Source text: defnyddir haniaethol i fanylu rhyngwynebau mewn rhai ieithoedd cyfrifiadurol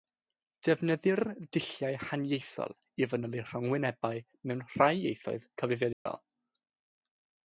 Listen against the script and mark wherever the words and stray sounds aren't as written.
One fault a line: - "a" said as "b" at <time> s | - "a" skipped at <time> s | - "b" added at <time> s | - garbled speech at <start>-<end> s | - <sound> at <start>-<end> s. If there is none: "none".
- "dulliau" added at 1.5 s
- dropout at 5.9-6.1 s